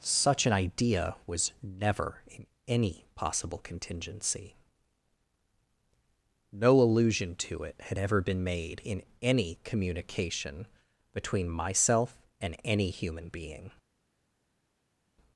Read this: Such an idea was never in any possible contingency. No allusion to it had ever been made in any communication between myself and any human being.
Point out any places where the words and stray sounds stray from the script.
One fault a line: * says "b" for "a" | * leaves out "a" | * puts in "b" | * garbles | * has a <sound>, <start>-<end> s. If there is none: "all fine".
all fine